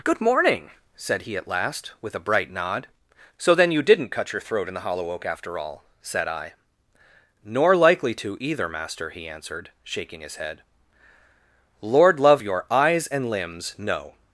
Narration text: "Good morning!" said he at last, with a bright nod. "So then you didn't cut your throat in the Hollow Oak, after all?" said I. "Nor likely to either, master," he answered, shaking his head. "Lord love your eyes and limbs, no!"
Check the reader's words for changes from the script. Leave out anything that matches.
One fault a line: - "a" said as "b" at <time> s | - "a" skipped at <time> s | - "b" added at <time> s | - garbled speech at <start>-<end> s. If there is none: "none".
none